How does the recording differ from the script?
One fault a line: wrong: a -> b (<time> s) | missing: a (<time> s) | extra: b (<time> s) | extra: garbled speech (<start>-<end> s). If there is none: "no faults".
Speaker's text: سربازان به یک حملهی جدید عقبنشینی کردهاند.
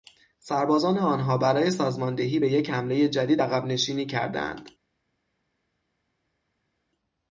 extra: آنها برای سازماندهی (1.0 s)